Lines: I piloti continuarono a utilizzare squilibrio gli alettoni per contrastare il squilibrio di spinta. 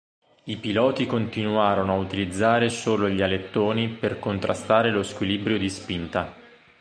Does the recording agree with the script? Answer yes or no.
no